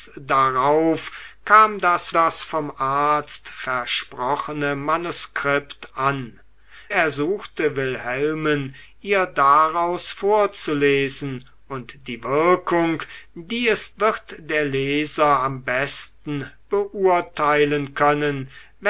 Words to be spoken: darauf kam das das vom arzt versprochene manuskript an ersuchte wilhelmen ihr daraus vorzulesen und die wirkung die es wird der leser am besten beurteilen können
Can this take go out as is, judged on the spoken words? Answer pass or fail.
pass